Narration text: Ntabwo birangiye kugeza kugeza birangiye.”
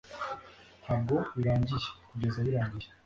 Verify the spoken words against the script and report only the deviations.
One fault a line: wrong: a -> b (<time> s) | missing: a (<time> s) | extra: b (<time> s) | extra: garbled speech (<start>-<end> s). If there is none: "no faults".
missing: kugeza (2.4 s)